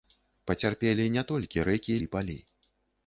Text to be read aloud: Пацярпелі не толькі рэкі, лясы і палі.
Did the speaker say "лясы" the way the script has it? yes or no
no